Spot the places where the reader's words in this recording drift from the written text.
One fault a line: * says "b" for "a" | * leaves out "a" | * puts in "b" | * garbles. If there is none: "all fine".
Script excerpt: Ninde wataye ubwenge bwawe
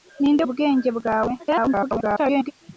* leaves out "wataye"
* garbles